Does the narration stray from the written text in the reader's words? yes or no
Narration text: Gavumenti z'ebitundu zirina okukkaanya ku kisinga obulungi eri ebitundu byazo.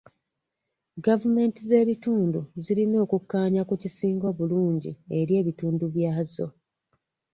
no